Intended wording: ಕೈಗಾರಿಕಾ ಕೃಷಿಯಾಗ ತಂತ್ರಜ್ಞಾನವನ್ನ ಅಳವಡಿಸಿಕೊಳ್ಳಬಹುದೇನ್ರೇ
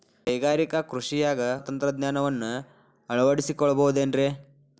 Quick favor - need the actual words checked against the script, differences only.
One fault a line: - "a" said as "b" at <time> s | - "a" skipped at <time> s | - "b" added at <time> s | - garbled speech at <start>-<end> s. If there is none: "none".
none